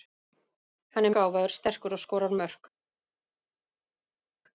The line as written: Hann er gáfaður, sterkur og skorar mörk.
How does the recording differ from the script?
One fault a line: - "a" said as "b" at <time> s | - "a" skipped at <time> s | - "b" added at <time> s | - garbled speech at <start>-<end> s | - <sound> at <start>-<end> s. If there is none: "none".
none